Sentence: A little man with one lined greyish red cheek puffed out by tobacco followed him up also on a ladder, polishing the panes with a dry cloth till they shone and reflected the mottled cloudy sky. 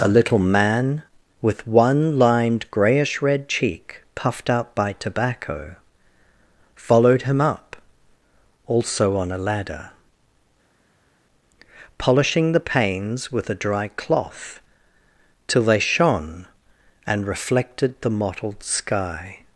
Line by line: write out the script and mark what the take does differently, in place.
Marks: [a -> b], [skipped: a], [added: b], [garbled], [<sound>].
A little man with one lined greyish red cheek puffed out by tobacco followed him up also on a ladder, polishing the panes with a dry cloth till they shone and reflected the mottled [skipped: cloudy] sky.